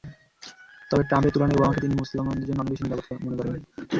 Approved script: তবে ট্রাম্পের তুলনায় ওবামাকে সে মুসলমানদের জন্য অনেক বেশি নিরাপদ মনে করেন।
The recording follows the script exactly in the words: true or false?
false